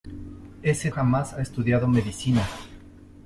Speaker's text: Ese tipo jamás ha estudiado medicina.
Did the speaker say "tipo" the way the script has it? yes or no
no